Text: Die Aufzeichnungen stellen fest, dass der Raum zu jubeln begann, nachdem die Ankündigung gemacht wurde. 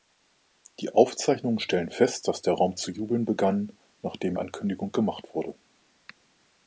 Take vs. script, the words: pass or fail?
fail